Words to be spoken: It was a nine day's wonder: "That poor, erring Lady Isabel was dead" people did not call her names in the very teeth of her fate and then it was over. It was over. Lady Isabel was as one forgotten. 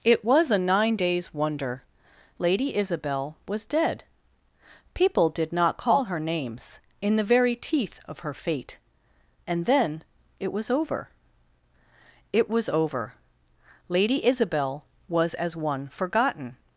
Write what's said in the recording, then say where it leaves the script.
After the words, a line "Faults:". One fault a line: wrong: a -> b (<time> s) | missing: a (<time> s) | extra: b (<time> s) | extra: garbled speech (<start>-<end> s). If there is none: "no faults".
It was a nine day's wonder: "Lady Isabel was dead" people did not call her names in the very teeth of her fate and then it was over. It was over. Lady Isabel was as one forgotten.
Faults:
missing: That poor erring (1.8 s)